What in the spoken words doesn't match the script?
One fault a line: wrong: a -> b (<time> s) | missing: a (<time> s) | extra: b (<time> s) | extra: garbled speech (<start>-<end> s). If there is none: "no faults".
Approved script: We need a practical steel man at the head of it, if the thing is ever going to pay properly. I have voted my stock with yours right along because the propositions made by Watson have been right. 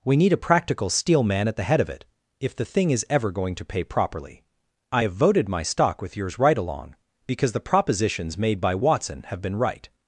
no faults